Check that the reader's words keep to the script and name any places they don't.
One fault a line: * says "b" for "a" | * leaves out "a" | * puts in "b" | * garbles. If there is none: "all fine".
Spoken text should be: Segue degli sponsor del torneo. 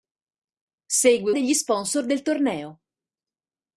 all fine